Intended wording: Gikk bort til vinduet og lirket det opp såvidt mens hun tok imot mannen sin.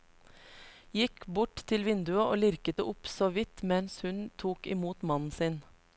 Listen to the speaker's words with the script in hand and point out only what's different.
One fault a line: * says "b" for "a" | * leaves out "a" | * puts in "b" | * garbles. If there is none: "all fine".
all fine